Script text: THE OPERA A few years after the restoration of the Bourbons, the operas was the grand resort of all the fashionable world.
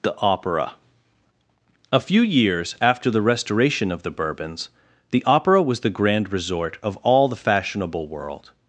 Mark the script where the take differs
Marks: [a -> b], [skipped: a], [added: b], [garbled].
THE OPERA A few years after the restoration of the Bourbons, the [operas -> opera] was the grand resort of all the fashionable world.